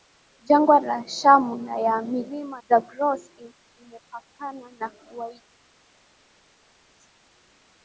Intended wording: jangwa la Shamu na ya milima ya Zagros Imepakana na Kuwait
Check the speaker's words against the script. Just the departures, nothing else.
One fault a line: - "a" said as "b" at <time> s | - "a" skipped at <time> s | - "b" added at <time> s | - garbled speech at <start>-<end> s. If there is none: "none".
- "ya" skipped at 2.6 s